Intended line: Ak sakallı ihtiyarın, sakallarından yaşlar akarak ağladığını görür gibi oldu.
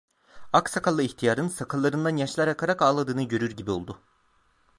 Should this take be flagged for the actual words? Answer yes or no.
no